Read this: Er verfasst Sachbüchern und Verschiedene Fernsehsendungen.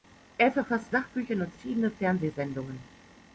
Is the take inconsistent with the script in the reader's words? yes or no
no